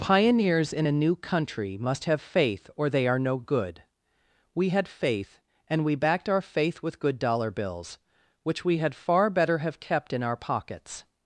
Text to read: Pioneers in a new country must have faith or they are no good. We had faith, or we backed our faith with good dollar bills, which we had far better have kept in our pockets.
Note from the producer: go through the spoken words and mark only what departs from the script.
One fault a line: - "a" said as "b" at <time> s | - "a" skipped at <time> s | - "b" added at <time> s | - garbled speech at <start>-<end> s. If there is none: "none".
- "or" said as "and" at 5.7 s